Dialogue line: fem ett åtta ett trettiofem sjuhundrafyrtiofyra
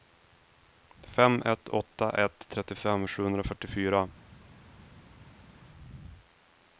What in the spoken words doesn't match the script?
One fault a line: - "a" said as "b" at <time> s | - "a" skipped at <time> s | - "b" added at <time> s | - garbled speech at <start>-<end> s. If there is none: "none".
none